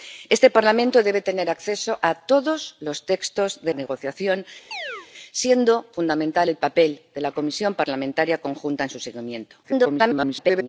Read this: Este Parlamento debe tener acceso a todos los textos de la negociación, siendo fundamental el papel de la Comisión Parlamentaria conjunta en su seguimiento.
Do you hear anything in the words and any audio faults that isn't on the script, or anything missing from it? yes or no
yes